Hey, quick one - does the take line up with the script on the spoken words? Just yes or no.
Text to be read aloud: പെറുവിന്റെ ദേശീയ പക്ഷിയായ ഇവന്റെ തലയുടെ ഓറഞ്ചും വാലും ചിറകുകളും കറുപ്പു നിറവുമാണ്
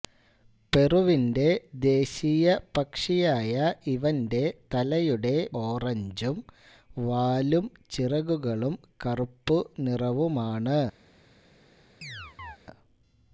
yes